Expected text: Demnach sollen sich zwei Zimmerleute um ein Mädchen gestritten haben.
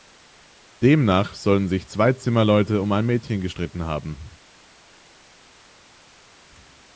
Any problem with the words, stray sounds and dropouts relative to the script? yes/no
no